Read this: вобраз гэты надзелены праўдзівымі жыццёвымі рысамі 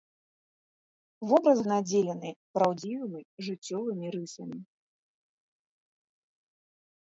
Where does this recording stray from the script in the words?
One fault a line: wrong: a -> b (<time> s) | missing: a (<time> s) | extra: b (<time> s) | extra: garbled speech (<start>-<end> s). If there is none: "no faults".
missing: гэты (1.6 s)